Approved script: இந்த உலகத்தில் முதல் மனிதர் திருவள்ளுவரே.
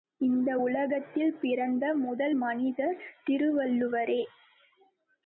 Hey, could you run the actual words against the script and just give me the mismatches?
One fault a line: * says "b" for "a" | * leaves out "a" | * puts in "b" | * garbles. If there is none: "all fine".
* puts in "பிறந்த"